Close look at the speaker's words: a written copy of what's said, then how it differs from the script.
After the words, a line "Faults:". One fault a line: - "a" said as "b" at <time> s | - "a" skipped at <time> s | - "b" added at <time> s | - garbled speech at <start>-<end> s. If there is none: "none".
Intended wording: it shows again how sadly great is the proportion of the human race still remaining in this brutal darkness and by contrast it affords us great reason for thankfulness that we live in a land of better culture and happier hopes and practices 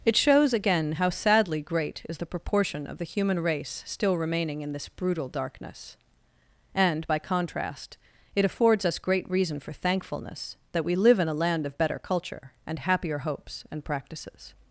it shows again how sadly great is the proportion of the human race still remaining in this brutal darkness and by contrast it affords us great reason for thankfulness that we live in a land of better culture and happier hopes and practices
Faults:
none